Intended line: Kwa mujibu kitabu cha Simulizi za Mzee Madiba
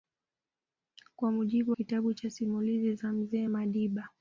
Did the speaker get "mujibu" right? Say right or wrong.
right